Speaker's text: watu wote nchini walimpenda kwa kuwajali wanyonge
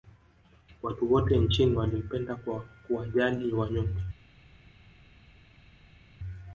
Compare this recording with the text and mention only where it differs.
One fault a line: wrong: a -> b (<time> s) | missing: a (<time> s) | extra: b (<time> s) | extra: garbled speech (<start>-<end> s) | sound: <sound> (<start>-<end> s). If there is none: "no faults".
no faults